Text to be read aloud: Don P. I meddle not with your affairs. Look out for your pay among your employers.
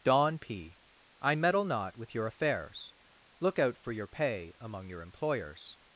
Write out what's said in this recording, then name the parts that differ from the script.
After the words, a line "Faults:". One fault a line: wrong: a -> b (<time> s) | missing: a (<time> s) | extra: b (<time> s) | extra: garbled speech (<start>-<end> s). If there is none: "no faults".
Don P. I meddle not with your affairs. Look out for your pay among your employers.
Faults:
no faults